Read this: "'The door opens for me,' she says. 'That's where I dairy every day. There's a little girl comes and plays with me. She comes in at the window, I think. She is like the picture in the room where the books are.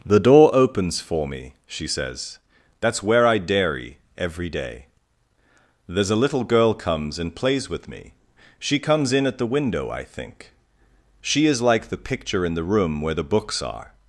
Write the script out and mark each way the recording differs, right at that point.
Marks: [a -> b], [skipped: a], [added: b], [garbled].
"'The door opens for me,' she says. 'That's where I dairy every day. There's a little girl comes and plays with me. She comes in at the window, I think. She is like the picture in the room where the books are.